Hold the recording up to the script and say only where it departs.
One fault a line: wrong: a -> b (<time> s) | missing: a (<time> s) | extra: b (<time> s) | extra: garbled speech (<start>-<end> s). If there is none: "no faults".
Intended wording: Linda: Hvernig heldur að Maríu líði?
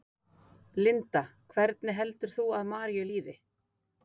extra: þú (2.4 s)